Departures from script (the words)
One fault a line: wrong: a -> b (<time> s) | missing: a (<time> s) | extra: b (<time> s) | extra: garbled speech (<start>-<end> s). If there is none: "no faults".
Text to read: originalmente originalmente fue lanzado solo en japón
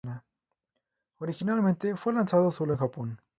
missing: originalmente (1.9 s)